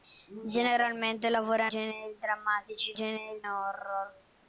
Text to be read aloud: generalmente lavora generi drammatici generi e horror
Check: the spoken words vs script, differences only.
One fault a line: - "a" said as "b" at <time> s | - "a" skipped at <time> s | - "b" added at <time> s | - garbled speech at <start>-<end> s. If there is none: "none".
none